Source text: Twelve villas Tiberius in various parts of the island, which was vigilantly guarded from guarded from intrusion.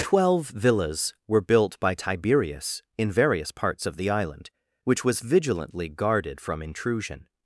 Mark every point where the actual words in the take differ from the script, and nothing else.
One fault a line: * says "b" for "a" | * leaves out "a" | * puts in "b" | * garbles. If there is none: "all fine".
* puts in "were built by"
* leaves out "guarded from"